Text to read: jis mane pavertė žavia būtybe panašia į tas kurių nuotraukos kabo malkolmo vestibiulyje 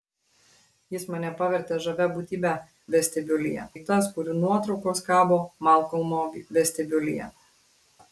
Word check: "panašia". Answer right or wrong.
wrong